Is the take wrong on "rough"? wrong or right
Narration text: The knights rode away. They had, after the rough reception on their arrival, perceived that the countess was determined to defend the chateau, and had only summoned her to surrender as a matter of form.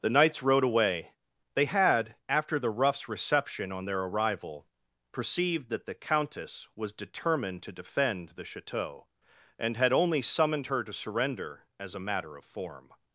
wrong